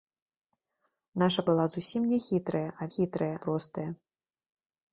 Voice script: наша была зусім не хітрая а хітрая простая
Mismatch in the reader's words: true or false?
false